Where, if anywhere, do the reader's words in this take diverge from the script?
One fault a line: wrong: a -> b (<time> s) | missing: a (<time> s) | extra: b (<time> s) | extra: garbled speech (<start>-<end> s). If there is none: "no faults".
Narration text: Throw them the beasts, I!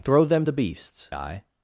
no faults